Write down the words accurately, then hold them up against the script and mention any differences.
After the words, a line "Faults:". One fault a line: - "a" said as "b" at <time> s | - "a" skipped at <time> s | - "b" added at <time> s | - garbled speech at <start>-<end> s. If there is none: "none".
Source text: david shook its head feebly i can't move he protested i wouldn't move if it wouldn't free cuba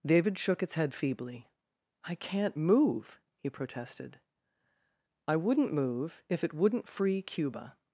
david shook its head feebly i can't move he protested i wouldn't move if it wouldn't free cuba
Faults:
none